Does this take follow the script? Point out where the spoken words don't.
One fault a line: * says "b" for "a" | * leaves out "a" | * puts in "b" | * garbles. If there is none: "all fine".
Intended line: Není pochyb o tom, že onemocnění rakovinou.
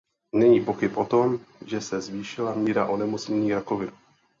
* puts in "se zvýšila míra"